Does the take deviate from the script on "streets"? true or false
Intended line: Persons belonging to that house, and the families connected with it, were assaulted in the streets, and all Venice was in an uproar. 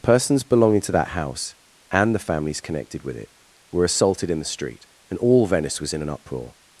true